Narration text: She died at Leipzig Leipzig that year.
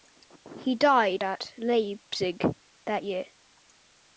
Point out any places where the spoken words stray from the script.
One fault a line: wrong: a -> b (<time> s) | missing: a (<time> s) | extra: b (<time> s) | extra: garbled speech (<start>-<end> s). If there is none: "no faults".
wrong: She -> He (0.6 s)
missing: Leipzig (2.4 s)